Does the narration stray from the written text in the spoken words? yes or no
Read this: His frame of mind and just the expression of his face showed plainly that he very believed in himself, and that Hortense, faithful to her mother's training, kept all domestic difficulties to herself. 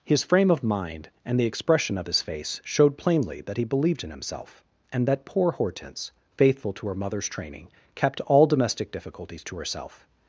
yes